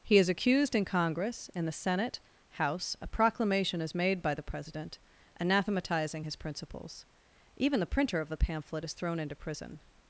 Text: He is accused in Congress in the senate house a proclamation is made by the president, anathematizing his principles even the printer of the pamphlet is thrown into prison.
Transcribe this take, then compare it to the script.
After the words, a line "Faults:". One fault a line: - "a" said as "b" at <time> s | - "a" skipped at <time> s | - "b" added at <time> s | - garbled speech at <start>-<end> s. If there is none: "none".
He is accused in Congress in the senate house a proclamation is made by the president, anathematizing his principles even the printer of the pamphlet is thrown into prison.
Faults:
none